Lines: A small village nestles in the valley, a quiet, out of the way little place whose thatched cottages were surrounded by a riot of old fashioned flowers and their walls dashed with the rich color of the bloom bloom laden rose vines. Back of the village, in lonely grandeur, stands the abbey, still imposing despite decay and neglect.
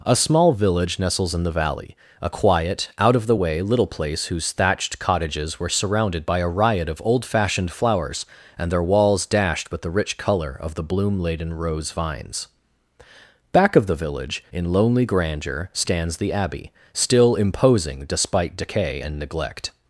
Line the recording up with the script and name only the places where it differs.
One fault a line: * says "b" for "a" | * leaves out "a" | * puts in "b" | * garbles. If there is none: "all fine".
* leaves out "bloom"